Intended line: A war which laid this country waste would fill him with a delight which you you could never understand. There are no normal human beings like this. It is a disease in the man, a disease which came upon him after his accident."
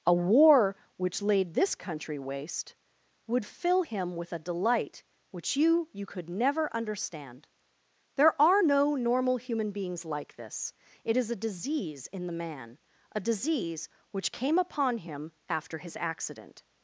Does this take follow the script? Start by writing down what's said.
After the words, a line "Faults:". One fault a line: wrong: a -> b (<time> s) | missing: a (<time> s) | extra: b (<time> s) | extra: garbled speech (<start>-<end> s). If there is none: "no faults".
A war which laid this country waste would fill him with a delight which you you could never understand. There are no normal human beings like this. It is a disease in the man, a disease which came upon him after his accident."
Faults:
no faults